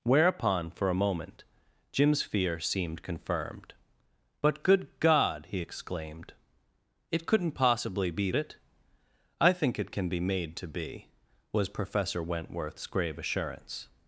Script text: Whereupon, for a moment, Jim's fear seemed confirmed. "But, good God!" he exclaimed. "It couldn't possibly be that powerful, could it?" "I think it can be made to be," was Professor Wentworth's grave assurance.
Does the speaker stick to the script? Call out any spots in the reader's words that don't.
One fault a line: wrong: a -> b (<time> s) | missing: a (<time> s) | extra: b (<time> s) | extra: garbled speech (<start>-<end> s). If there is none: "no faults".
missing: that powerful could (8.3 s)